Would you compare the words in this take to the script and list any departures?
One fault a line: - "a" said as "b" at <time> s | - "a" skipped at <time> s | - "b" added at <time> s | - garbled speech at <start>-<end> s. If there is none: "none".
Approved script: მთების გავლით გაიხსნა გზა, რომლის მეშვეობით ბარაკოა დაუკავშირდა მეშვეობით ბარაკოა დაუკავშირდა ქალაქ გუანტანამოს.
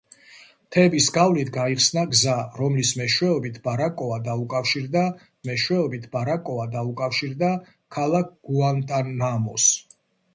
none